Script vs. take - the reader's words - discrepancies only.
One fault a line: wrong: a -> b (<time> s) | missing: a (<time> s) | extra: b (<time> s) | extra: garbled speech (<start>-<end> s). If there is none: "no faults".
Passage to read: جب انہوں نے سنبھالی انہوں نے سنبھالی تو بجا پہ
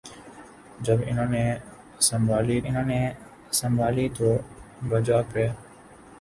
no faults